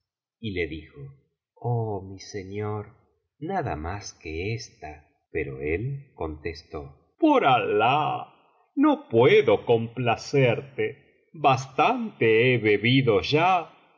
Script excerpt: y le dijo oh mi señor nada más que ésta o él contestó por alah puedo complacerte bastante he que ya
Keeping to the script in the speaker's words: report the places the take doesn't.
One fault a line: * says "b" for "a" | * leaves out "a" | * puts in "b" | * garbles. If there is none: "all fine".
* says "pero" for "o"
* puts in "no"
* says "bebido" for "que"